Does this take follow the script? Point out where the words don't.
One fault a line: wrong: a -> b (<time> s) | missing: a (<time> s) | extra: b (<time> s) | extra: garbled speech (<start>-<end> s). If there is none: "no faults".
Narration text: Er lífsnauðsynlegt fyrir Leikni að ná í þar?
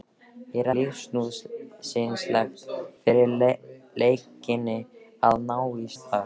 no faults